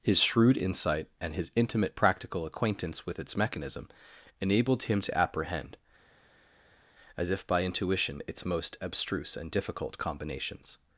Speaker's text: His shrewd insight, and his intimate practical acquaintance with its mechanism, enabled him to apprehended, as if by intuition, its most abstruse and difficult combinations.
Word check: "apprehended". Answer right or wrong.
wrong